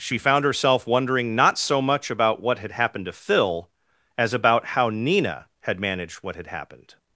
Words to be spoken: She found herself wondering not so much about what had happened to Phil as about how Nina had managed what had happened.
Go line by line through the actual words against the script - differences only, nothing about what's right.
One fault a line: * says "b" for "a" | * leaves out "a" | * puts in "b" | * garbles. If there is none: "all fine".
all fine